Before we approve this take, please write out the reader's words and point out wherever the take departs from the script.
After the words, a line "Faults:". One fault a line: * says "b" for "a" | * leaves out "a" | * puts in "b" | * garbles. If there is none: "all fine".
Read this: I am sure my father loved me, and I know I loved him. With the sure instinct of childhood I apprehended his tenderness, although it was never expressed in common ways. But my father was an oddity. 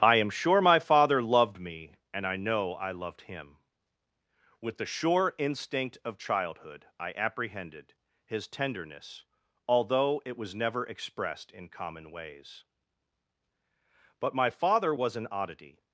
I am sure my father loved me, and I know I loved him. With the sure instinct of childhood I apprehended his tenderness, although it was never expressed in common ways. But my father was an oddity.
Faults:
all fine